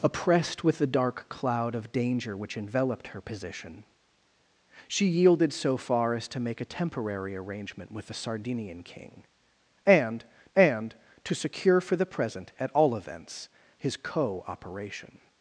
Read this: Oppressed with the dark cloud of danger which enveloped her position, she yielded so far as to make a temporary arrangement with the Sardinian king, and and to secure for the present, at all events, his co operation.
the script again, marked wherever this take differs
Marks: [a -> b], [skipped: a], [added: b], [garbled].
Oppressed with the dark cloud of danger which enveloped her position, she yielded so far as to make a temporary arrangement with the Sardinian king, and and to secure for the present, at all events, his co operation.